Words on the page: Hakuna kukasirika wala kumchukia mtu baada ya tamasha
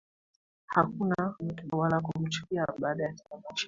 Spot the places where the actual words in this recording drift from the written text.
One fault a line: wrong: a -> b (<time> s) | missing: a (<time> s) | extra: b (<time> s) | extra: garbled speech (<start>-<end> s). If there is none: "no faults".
wrong: kukasirika -> mtu (1.4 s)
missing: mtu (2.7 s)